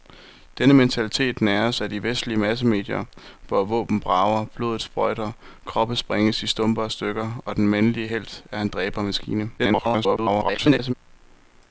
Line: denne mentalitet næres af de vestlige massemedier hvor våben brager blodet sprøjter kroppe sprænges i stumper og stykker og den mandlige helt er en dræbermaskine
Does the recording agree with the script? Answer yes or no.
no